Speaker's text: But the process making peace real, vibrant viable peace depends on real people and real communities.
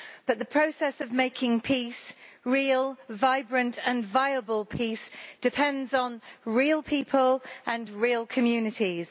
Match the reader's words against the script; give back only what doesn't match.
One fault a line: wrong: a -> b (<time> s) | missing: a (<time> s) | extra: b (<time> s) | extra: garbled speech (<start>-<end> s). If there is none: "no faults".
extra: of (1.0 s)
extra: and (3.9 s)